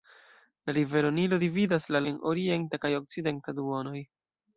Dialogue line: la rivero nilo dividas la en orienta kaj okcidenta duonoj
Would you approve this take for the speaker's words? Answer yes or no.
yes